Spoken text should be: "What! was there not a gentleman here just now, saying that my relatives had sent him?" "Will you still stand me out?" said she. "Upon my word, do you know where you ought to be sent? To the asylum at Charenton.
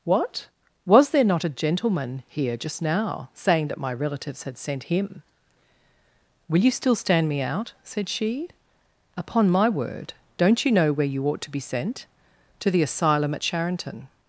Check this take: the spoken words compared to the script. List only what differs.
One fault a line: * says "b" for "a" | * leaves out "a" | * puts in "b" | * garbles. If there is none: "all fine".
* says "don't" for "do"